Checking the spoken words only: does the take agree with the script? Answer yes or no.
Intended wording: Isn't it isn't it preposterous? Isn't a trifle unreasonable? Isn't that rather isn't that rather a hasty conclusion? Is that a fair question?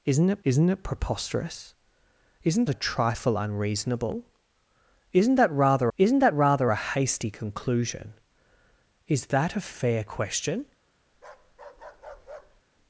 yes